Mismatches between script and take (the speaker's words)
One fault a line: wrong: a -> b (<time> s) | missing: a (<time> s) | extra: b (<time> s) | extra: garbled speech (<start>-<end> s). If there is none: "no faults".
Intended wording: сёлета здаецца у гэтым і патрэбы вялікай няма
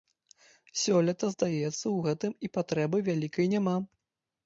no faults